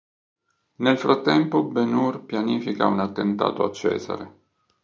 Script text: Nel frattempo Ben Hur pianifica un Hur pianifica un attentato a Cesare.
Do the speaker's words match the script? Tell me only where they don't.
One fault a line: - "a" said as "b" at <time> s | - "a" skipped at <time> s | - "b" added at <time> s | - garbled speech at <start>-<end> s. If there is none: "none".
- "Hur pianifica un" skipped at 3.0 s